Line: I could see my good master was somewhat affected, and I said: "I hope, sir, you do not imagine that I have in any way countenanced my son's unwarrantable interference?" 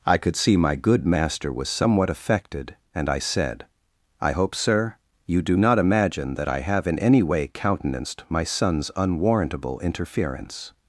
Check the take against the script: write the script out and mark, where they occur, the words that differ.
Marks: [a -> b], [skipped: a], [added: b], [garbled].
I could see my good master was somewhat affected, and I said: "I hope, sir, you do not imagine that I have in any way countenanced my son's unwarrantable interference?"